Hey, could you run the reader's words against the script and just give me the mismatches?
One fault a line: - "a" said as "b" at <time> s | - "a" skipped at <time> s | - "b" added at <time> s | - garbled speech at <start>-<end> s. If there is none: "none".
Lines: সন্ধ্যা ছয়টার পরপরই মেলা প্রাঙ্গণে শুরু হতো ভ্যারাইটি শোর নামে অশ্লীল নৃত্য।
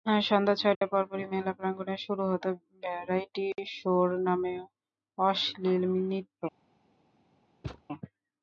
none